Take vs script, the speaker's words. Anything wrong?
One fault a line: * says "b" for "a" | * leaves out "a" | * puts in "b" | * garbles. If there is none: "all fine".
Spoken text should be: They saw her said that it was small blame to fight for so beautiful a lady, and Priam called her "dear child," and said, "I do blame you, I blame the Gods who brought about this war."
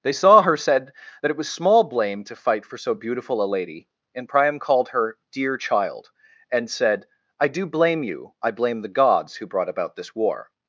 all fine